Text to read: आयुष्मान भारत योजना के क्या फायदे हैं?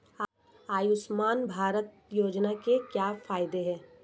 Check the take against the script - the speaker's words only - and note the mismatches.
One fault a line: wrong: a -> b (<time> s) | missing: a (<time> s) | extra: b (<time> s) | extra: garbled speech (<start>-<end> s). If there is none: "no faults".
no faults